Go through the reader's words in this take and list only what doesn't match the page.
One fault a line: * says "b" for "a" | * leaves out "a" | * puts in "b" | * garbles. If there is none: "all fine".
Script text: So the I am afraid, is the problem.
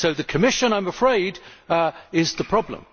* puts in "Commission"